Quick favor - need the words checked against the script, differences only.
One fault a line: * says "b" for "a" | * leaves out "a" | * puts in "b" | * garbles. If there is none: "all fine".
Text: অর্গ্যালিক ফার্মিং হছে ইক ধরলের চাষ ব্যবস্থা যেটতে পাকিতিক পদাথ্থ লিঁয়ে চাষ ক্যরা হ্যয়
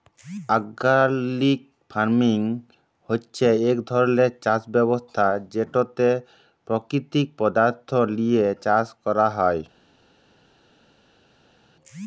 all fine